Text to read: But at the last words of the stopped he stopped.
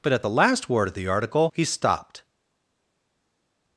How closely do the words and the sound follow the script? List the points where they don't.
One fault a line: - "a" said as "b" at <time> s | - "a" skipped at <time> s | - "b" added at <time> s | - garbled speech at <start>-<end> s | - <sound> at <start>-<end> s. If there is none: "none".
- "words" said as "word" at 0.7 s
- "stopped" said as "article" at 1.1 s